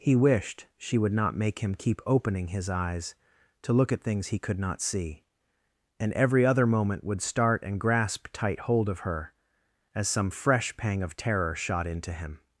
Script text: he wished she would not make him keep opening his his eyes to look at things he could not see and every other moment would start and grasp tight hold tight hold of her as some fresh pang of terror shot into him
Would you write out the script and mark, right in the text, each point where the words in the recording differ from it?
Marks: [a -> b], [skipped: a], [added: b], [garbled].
he wished she would not make him keep opening his [skipped: his] eyes to look at things he could not see and every other moment would start and grasp tight hold [skipped: tight hold] of her as some fresh pang of terror shot into him